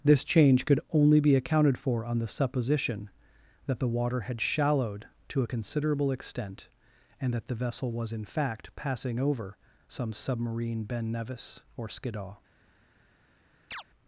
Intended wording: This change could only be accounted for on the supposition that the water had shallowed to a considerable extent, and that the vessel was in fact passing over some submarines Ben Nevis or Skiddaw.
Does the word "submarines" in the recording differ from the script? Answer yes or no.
yes